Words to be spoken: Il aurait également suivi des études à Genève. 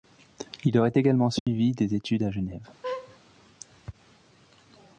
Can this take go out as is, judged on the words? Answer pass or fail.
pass